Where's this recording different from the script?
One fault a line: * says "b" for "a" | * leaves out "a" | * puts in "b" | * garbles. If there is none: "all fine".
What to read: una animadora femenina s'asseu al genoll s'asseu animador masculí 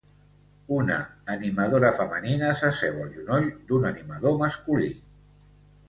* says "d'un" for "s'asseu"